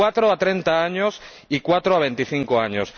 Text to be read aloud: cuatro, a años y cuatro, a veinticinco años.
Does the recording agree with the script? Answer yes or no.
no